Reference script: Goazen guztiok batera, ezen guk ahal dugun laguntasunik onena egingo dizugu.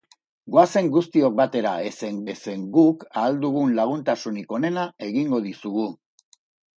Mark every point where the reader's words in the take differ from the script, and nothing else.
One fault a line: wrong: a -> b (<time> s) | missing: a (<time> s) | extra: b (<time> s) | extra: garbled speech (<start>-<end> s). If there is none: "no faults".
extra: ezen (2.3 s)